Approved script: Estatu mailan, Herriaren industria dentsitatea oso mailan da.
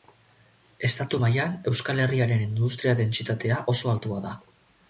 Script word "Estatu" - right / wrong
right